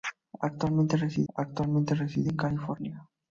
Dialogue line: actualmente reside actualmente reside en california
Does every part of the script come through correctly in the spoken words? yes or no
yes